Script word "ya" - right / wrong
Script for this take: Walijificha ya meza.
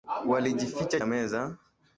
right